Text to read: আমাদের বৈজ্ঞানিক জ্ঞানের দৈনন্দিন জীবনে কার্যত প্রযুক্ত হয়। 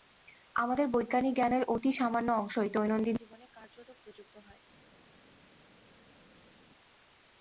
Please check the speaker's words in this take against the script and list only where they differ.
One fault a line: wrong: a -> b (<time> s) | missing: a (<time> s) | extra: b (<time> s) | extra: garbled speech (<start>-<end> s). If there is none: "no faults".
extra: অতি সামান্য অংশই (1.7 s)